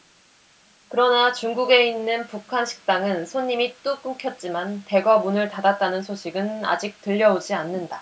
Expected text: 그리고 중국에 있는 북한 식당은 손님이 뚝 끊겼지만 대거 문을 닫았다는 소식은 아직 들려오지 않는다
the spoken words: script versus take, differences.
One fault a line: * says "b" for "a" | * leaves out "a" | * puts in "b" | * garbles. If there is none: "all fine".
* says "그러나" for "그리고"